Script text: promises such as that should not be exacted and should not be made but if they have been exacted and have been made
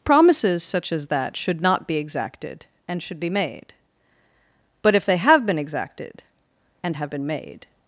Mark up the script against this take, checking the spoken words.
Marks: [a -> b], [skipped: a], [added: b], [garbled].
promises such as that should not be exacted and should [skipped: not] be made but if they have been exacted and have been made